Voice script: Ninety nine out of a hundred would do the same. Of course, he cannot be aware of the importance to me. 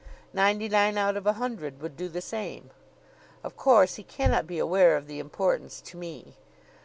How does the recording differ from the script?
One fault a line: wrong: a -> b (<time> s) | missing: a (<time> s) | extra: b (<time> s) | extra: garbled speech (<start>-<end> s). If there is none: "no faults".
no faults